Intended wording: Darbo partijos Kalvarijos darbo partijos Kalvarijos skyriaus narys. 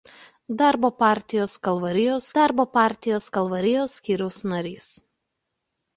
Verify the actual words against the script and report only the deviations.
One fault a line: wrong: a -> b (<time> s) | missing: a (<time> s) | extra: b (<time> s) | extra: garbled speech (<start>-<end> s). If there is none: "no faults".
no faults